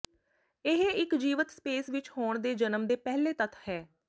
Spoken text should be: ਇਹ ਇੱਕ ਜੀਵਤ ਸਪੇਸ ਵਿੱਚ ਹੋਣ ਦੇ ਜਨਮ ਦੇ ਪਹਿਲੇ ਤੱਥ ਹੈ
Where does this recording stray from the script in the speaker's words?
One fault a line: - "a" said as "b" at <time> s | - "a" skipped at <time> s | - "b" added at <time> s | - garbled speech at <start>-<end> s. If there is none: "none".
none